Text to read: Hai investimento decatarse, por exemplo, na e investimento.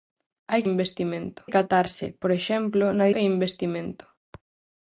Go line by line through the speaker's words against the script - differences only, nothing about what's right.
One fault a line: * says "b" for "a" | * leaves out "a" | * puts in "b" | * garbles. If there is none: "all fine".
all fine